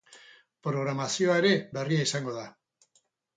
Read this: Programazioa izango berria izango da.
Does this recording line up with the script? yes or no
no